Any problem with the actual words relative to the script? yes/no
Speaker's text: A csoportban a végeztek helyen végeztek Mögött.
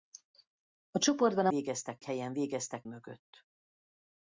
no